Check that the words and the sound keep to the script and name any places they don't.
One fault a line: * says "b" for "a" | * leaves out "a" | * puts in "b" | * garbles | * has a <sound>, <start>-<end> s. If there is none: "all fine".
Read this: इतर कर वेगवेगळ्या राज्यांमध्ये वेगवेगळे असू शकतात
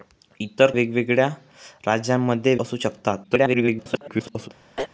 * leaves out "कर"
* leaves out "वेगवेगळे"
* garbles
* has a throat clearing, 4.8-4.9 s